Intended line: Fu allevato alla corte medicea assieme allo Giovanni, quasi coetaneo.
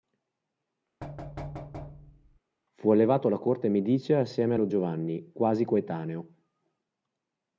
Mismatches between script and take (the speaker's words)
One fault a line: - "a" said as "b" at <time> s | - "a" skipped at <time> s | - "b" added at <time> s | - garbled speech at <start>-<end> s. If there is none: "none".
none